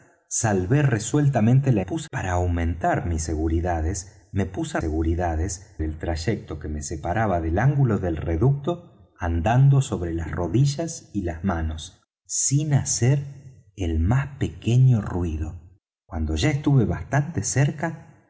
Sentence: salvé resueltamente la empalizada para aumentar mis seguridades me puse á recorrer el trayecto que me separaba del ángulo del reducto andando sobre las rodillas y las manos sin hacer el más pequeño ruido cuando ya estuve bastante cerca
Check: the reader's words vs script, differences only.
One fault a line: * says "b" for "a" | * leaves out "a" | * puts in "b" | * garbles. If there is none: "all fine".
* says "puse" for "empalizada"
* says "seguridades" for "recorrer"